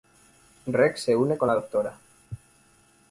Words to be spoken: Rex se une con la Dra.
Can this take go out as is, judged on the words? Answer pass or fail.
pass